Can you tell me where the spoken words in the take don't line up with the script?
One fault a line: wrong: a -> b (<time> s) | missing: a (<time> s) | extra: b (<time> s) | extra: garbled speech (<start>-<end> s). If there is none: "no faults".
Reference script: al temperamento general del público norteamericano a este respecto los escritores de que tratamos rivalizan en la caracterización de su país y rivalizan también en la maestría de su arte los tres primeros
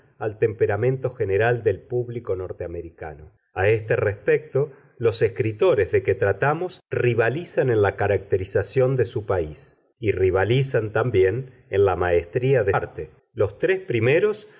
missing: su (12.8 s)